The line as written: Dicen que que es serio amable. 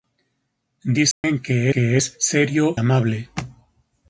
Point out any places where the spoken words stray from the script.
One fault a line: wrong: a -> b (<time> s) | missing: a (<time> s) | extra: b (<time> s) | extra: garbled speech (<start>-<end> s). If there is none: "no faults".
no faults